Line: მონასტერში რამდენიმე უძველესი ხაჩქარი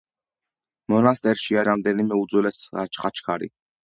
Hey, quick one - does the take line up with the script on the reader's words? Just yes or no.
yes